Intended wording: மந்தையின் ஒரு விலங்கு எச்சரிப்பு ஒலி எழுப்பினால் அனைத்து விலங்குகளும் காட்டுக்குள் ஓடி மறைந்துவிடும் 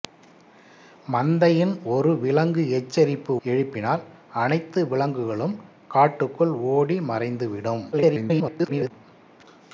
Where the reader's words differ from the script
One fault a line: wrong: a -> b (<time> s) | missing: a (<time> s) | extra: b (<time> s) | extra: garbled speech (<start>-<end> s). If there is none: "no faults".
missing: ஒலி (3.3 s)
extra: garbled speech (7.9-8.9 s)